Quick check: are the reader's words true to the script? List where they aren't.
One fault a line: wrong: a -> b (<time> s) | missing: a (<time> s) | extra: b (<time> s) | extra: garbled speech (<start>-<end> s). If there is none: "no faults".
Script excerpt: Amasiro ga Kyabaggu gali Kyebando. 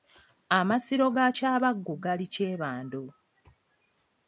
no faults